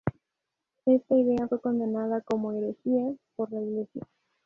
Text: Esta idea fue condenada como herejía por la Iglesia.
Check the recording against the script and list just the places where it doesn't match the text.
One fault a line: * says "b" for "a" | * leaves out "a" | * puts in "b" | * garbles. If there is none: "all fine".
all fine